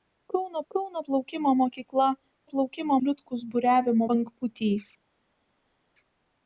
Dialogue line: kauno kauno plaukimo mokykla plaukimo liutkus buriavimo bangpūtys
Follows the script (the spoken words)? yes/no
yes